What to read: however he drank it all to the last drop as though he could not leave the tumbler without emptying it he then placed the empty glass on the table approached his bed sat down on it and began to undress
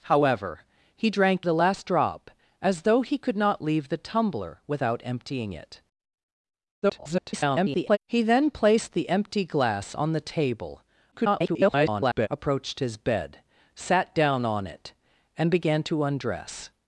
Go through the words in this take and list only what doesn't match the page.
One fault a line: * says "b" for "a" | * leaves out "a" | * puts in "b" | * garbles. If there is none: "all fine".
* leaves out "it all to"
* garbles
* garbles